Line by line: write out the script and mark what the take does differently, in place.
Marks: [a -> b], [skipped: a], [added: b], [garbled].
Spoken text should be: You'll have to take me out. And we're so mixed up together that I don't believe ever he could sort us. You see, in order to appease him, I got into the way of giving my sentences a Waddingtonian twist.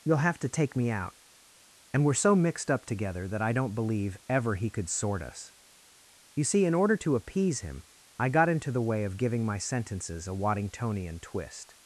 You'll have to take me out. And we're so mixed up together that I don't believe ever he could sort us. You see, in order to appease him, I got into the way of giving my sentences a Waddingtonian twist.